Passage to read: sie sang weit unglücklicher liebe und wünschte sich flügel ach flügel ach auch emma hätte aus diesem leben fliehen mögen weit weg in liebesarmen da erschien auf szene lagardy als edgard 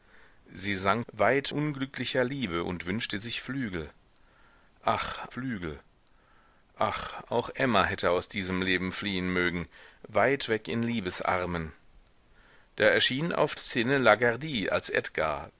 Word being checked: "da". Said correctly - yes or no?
yes